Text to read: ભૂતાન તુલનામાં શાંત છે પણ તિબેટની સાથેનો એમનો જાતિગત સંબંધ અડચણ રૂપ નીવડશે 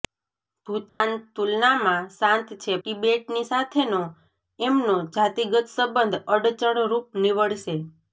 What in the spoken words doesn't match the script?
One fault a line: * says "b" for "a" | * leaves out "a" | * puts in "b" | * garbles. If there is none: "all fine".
* leaves out "પણ"